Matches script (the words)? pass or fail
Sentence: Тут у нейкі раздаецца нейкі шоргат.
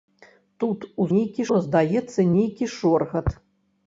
pass